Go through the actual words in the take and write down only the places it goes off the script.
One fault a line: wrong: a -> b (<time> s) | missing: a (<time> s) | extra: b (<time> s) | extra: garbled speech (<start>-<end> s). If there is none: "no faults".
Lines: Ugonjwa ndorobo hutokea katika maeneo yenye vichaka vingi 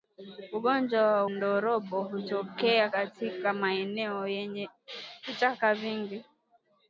no faults